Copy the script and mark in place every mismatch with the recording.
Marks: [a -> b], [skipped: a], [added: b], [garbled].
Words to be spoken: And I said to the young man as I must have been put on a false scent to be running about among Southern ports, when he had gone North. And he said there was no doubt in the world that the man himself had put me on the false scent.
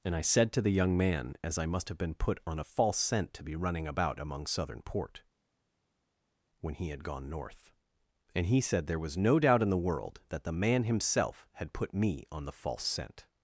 And I said to the young man as I must have been put on a false scent to be running about among Southern [ports, -> port] when he had gone North. And he said there was no doubt in the world that the man himself had put me on the false scent.